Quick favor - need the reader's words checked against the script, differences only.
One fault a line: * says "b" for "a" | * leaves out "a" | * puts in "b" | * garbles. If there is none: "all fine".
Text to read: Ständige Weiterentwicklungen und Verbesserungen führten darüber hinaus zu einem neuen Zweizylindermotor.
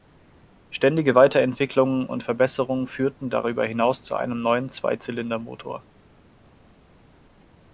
all fine